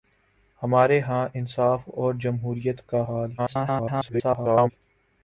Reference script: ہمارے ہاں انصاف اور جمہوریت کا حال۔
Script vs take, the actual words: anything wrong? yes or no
yes